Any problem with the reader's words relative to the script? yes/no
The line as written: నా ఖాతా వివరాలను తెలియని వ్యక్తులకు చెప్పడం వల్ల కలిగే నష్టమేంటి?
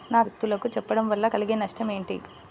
yes